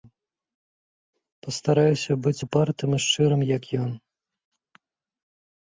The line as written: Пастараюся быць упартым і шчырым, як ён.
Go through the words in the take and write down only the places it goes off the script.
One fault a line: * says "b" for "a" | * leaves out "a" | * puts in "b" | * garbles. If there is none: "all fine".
all fine